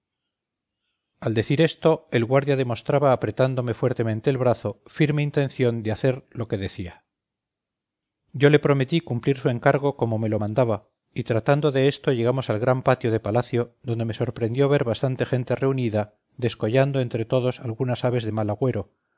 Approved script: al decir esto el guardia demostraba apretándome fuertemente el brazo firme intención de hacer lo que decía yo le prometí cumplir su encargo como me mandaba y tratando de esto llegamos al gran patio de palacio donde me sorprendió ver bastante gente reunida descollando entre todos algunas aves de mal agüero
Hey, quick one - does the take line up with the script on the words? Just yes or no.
no